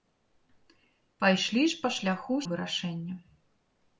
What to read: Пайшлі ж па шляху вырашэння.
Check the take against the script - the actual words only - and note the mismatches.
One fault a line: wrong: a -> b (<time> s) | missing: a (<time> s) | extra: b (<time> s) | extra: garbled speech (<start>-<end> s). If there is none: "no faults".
no faults